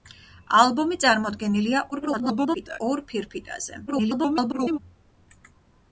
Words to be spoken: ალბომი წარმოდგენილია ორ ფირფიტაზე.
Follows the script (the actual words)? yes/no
no